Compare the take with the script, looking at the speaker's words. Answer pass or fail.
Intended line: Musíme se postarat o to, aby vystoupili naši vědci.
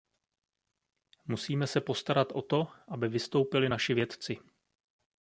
pass